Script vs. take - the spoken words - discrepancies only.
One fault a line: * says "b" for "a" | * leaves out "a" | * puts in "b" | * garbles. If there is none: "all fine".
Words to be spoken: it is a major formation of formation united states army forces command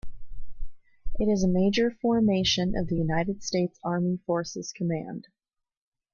* says "the" for "formation"